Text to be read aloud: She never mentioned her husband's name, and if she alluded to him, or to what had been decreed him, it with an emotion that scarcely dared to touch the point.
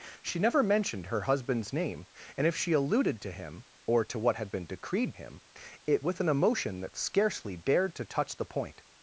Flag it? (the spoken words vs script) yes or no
no